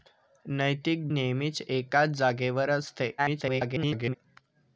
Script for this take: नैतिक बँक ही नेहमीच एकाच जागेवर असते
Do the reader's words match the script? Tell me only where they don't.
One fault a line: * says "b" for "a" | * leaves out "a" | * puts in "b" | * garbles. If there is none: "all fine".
* leaves out "बँक ही"
* garbles